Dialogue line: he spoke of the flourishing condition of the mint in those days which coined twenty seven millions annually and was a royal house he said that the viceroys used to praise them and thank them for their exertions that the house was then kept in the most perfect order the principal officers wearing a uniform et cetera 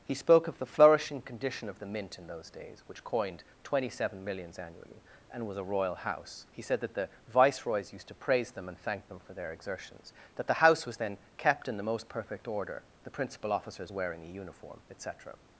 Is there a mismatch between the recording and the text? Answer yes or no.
no